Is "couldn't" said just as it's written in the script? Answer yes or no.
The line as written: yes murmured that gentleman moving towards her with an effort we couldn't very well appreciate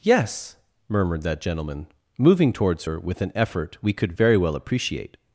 no